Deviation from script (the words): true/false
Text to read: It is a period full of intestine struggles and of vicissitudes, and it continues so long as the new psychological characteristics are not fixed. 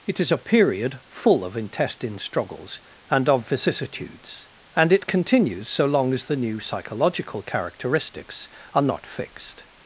false